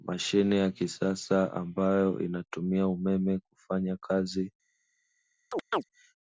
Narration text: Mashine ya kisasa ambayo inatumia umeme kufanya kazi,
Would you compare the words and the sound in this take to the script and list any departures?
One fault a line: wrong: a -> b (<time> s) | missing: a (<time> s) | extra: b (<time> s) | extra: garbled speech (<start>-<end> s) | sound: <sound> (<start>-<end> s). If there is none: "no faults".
sound: chirp (5.5-5.8 s)